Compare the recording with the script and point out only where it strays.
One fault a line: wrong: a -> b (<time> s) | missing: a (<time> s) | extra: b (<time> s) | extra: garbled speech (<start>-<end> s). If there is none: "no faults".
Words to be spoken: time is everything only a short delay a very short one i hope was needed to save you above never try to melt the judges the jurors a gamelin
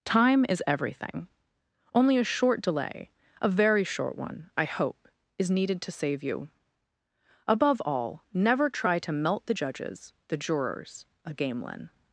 wrong: was -> is (5.4 s)
extra: all (7.8 s)